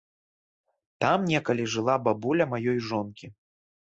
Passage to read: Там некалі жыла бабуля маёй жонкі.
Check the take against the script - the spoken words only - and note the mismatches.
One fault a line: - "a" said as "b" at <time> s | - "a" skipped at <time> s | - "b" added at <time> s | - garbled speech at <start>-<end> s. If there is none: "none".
none